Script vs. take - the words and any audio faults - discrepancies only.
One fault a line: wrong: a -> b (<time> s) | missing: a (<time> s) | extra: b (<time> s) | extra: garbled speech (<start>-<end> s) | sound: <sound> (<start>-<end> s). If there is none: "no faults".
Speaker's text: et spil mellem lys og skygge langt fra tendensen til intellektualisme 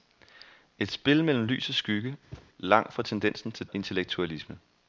sound: thud (2.3-2.5 s)